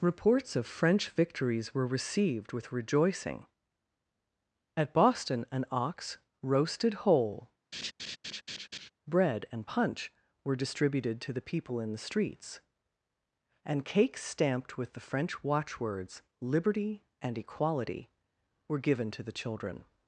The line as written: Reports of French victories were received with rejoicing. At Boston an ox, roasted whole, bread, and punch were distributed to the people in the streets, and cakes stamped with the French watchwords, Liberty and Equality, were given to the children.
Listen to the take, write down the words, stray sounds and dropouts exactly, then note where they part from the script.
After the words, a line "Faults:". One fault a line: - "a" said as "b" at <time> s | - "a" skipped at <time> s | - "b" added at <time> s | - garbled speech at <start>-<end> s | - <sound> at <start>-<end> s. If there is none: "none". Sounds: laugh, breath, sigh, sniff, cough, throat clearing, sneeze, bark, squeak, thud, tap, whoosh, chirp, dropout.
Reports of French victories were received with rejoicing. At Boston an ox, roasted whole, bread, and punch were distributed to the people in the streets, and cakes stamped with the French watchwords, Liberty and Equality, were given to the children.
Faults:
- laugh at 7.7-8.9 s